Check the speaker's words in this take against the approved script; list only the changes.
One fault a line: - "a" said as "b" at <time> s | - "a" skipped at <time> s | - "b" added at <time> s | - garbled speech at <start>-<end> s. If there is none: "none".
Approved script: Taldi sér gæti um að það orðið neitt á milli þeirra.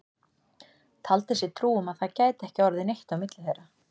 - "gæti" said as "trú" at 1.6 s
- "gæti ekki" added at 2.2 s